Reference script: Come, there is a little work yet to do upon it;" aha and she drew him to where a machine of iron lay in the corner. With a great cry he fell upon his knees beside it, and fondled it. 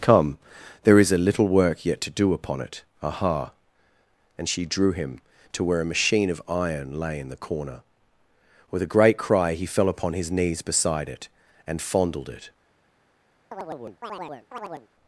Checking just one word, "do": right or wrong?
right